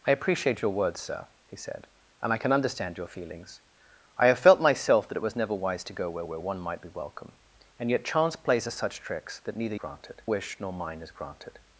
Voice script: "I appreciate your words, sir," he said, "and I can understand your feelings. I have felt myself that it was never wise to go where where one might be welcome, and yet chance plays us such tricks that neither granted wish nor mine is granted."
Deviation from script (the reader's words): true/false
false